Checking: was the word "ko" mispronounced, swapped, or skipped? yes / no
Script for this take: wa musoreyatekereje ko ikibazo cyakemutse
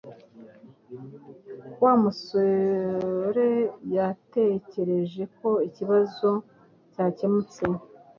no